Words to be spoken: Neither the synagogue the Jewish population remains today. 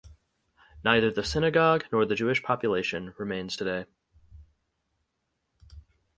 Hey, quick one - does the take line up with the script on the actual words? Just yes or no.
no